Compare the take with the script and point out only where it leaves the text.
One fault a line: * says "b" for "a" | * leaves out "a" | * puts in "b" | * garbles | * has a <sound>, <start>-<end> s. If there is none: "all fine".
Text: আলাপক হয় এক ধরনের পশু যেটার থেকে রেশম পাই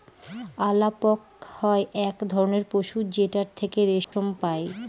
* has a dropout, 4.0-4.1 s